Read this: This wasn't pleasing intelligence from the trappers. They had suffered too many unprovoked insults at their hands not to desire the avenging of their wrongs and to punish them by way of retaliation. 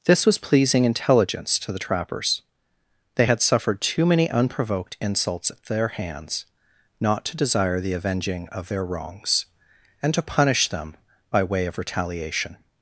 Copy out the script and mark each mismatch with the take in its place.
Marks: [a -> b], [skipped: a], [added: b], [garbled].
This [wasn't -> was] pleasing intelligence [from -> to] the trappers. They had suffered too many unprovoked insults at their hands not to desire the avenging of their wrongs and to punish them by way of retaliation.